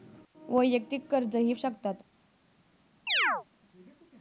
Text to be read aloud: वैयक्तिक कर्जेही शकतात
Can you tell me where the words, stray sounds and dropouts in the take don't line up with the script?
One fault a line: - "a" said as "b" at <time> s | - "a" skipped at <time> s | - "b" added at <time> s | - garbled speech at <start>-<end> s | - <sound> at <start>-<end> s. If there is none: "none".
- chirp at 3.1-3.4 s